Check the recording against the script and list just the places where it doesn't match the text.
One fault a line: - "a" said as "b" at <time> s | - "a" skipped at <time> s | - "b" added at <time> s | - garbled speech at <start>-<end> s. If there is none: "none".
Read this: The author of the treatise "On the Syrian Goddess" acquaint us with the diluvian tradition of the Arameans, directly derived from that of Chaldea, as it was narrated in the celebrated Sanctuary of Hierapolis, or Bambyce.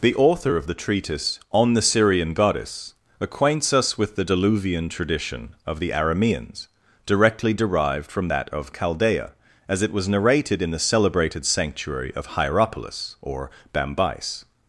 - "acquaint" said as "acquaints" at 3.2 s